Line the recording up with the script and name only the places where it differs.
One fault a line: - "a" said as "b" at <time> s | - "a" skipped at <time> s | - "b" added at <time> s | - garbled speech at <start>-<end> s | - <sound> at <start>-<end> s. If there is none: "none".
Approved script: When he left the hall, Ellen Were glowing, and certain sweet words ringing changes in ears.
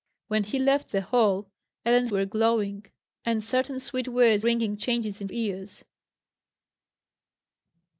none